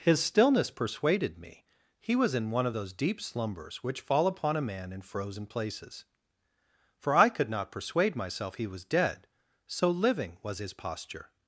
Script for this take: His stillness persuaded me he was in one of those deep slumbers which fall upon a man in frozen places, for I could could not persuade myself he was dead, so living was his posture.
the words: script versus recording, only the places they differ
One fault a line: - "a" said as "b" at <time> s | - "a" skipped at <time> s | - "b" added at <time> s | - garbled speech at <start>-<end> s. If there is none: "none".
- "could" skipped at 7.5 s